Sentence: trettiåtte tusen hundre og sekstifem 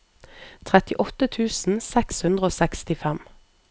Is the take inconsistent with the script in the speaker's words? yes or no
yes